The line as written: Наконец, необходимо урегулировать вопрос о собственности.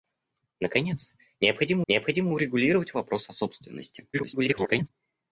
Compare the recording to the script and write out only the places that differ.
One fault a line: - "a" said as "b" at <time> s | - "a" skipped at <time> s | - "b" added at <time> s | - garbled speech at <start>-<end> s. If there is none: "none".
- "необходимо" added at 1.9 s
- garbled speech at 4.1-4.9 s